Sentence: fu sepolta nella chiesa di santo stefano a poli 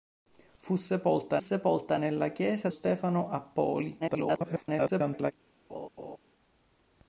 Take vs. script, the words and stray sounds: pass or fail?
fail